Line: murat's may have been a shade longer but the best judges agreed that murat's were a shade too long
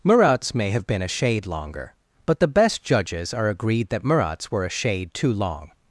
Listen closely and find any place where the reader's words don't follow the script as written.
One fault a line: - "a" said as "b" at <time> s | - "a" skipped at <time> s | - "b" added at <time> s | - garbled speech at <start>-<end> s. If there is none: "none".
- "are" added at 3.4 s